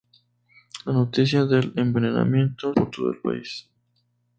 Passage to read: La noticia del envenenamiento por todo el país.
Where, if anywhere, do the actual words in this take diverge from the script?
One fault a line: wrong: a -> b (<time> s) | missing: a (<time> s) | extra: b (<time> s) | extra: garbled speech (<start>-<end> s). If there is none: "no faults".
no faults